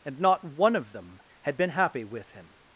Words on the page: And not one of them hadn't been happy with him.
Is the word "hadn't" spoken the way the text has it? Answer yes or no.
no